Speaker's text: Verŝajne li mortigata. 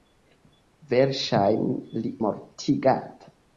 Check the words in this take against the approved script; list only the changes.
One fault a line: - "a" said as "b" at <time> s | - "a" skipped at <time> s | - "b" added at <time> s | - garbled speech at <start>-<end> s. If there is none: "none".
none